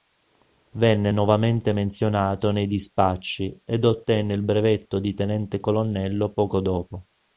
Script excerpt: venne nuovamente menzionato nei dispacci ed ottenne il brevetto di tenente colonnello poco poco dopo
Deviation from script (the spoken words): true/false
true